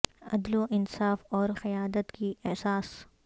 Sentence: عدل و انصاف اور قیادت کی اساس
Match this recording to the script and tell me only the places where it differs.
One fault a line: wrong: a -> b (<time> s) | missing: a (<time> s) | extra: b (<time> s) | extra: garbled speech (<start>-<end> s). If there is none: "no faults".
no faults